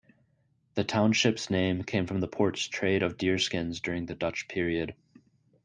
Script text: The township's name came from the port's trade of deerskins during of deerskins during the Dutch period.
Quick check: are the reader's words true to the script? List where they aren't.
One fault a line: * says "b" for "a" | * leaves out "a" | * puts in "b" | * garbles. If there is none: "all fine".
* leaves out "of deerskins during"